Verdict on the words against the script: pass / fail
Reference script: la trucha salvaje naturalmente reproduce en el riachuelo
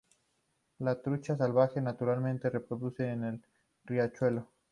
pass